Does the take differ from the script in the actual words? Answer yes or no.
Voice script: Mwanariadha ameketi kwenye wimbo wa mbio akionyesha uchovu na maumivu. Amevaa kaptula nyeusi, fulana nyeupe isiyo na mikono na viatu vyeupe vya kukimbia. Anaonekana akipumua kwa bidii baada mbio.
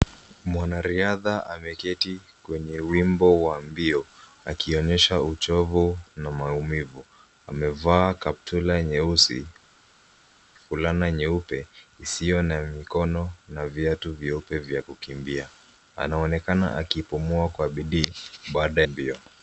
no